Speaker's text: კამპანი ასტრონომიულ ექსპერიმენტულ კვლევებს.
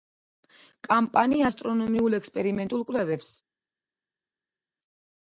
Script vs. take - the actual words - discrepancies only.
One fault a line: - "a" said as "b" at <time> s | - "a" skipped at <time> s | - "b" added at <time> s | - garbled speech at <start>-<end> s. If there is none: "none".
none